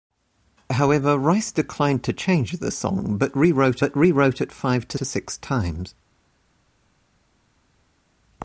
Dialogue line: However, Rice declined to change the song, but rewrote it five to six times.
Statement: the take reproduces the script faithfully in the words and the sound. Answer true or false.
false